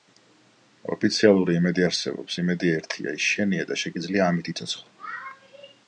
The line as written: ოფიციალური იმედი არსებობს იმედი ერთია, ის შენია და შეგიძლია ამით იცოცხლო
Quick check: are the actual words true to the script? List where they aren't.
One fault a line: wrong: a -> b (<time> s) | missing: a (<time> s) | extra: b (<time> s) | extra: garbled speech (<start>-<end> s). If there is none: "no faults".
no faults